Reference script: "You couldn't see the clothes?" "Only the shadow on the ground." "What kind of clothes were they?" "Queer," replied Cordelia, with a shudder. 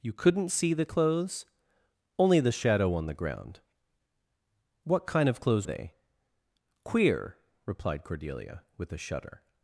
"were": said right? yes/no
no